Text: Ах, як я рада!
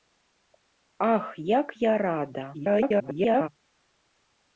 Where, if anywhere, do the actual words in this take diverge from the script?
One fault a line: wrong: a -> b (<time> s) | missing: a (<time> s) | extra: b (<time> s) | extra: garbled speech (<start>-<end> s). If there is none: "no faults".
extra: garbled speech (2.5-3.5 s)